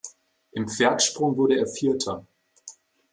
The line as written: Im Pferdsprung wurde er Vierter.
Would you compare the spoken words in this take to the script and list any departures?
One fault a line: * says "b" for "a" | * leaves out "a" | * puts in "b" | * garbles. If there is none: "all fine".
all fine